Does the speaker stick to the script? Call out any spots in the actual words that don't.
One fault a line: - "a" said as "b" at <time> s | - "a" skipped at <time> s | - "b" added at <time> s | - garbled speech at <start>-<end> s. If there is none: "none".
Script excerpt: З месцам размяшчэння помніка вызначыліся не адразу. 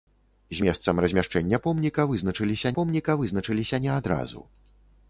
- "помніка вызначыліся" added at 2.8 s